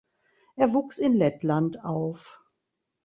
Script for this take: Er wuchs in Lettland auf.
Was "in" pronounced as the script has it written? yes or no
yes